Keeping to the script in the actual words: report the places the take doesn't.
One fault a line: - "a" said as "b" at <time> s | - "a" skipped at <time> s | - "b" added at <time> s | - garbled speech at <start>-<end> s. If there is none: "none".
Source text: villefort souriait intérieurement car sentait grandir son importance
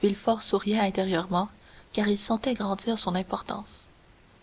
- "il" added at 2.1 s